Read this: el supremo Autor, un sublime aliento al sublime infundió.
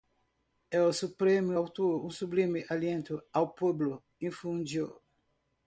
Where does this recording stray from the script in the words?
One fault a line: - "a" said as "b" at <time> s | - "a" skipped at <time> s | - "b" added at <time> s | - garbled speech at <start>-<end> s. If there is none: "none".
- "sublime" said as "pueblo" at 3.5 s